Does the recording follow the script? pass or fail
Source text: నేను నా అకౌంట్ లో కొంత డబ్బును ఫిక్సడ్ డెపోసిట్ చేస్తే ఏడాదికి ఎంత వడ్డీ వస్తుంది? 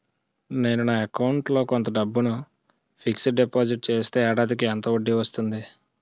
pass